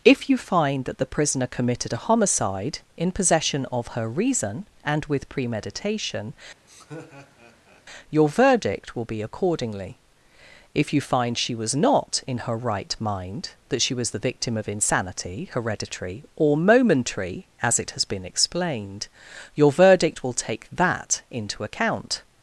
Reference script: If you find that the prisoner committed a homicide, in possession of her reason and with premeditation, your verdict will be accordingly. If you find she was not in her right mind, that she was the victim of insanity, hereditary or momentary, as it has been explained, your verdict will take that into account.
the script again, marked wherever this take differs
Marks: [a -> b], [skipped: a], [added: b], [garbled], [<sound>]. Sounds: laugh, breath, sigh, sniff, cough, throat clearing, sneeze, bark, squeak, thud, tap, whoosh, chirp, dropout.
If you find that the prisoner committed a homicide, in possession of her reason and with premeditation, [laugh] your verdict will be accordingly. If you find she was not in her right mind, that she was the victim of insanity, hereditary or momentary, as it has been explained, your verdict will take that into account.